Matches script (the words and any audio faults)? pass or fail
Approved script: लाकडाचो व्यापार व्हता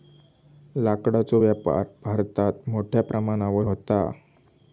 fail